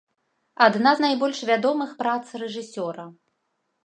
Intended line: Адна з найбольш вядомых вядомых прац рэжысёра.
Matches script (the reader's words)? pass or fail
fail